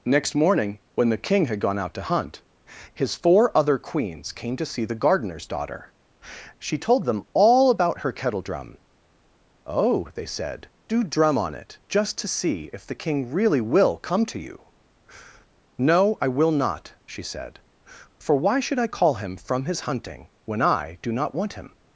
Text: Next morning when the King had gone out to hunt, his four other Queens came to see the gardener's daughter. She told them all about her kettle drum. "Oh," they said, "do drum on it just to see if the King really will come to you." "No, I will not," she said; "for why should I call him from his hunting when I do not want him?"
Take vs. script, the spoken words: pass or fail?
pass